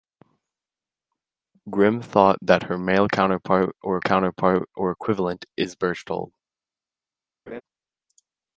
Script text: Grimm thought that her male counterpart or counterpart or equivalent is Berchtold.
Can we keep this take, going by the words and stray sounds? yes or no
no